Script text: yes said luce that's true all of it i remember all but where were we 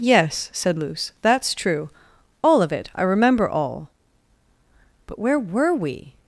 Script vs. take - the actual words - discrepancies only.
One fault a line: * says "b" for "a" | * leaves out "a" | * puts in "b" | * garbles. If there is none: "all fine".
all fine